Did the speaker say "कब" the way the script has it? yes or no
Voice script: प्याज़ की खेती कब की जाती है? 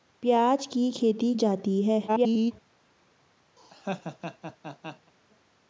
no